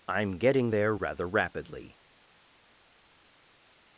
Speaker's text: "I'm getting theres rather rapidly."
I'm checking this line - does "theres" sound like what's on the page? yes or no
no